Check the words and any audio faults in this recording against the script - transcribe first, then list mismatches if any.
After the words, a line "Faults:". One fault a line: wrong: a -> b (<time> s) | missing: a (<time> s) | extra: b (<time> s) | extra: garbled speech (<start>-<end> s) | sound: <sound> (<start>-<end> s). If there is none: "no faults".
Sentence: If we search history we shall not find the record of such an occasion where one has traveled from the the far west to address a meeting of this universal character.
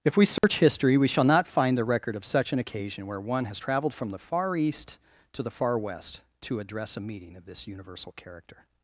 If we search history we shall not find the record of such an occasion where one has traveled from the far east to the far west to address a meeting of this universal character.
Faults:
sound: dropout (0.4-0.4 s)
extra: far east to (4.2 s)